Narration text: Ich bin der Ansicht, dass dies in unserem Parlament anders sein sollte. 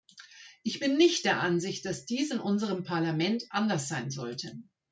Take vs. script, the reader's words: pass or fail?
fail